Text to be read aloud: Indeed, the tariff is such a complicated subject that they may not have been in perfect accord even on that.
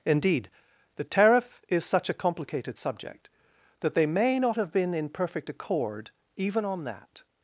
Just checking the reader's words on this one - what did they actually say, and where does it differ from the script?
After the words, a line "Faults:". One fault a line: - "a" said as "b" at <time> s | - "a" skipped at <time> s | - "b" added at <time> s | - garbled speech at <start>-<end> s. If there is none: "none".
Indeed, the tariff is such a complicated subject that they may not have been in perfect accord even on that.
Faults:
none